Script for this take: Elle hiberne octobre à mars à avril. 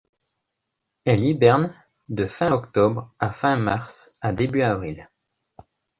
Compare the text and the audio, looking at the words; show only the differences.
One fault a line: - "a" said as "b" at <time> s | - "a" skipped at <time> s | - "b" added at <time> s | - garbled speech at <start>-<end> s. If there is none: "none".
- "de fin" added at 2.1 s
- "fin" added at 3.3 s
- "début" added at 4.3 s